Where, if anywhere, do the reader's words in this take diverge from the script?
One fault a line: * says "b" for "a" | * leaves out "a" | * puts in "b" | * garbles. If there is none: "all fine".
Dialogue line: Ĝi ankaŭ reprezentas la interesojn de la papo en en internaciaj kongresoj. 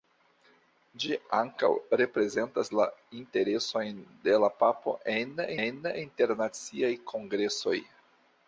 all fine